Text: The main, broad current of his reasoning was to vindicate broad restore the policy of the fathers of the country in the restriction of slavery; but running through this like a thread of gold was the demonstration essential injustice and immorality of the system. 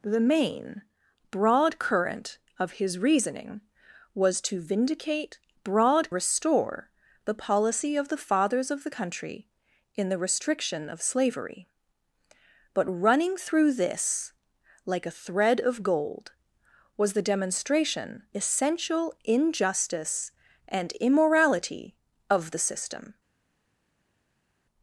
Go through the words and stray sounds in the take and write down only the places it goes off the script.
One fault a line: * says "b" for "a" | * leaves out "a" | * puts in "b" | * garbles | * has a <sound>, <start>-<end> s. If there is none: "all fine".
all fine